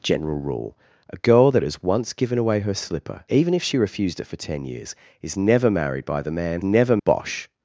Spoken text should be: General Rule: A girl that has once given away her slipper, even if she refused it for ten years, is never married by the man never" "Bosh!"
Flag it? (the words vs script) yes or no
no